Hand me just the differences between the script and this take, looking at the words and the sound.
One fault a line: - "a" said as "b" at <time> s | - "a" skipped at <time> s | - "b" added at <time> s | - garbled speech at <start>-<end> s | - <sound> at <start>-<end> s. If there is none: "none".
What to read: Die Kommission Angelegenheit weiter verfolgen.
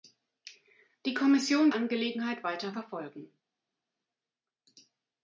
none